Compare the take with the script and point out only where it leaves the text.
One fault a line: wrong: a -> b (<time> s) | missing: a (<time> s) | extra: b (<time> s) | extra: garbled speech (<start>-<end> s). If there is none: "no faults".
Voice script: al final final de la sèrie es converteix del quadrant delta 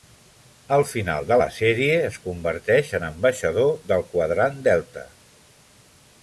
missing: final (1.3 s)
extra: en ambaixador (3.0 s)